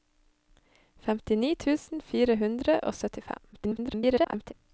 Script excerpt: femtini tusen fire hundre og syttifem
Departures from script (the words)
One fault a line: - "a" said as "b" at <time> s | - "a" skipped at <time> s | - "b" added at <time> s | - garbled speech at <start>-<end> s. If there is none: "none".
- garbled speech at 3.5-4.5 s